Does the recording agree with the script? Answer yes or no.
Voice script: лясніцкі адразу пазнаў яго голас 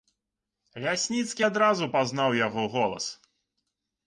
yes